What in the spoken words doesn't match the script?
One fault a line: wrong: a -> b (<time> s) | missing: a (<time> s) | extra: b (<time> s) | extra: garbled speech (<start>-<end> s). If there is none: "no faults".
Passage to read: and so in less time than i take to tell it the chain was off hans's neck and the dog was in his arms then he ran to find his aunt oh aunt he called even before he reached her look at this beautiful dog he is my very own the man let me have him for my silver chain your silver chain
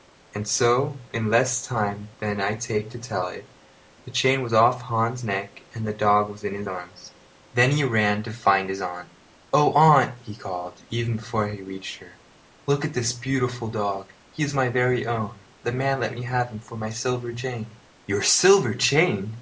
no faults